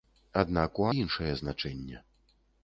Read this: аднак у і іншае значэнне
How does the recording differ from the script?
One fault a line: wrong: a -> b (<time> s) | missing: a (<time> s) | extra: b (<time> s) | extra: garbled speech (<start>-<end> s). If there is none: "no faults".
no faults